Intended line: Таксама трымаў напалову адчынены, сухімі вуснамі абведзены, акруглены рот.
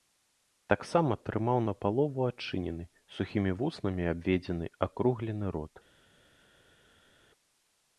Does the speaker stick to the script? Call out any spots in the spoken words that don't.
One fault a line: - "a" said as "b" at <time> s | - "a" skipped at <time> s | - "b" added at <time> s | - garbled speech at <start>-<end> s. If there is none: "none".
none